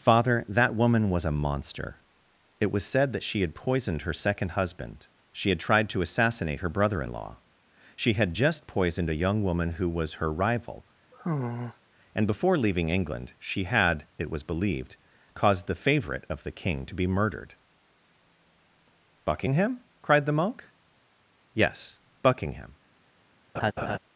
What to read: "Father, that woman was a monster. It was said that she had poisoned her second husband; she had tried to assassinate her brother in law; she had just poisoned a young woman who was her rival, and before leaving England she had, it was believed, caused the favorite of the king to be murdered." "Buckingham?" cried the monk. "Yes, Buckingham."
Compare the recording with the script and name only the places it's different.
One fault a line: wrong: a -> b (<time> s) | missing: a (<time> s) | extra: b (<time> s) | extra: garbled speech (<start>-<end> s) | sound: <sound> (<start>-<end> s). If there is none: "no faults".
sound: sigh (11.1-11.8 s)
sound: laugh (23.5-24.0 s)